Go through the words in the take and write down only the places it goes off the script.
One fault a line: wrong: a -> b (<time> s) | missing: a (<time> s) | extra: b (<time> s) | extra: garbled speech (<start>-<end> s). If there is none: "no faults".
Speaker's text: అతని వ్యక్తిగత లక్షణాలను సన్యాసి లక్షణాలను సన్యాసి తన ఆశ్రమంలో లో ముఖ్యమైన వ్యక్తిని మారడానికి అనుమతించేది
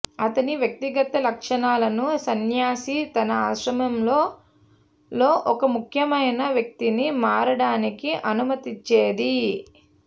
missing: లక్షణాలను సన్యాసి (3.0 s)
extra: ఒక (5.5 s)